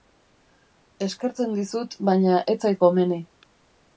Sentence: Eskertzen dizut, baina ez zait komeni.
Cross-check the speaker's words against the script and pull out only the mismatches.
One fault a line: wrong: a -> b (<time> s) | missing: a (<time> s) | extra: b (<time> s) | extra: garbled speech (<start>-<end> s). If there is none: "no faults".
no faults